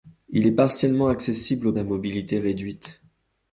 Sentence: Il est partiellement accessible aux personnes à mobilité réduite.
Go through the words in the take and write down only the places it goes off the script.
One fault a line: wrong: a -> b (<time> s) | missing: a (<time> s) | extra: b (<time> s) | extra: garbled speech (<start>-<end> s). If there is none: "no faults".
missing: personnes (1.7 s)